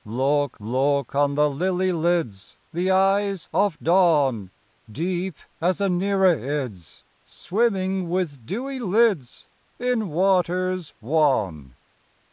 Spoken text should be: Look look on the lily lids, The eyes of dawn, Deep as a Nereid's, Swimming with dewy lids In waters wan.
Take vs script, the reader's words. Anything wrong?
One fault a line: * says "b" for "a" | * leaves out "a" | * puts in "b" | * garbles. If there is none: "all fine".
all fine